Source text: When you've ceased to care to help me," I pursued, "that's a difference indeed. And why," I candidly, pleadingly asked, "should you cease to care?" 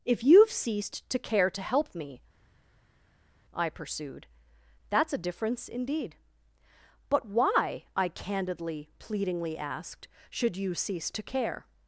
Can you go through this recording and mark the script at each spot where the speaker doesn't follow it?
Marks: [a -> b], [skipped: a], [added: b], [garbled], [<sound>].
[When -> If] you've ceased to care to help me," I pursued, "that's a difference indeed. [And -> But] why," I candidly, pleadingly asked, "should you cease to care?"